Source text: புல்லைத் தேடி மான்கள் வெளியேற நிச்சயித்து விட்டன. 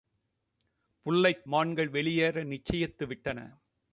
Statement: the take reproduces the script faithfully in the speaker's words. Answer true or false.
false